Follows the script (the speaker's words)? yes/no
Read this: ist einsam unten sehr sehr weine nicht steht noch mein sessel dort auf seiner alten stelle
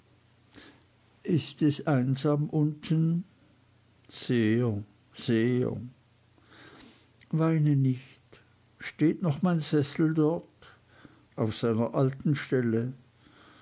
no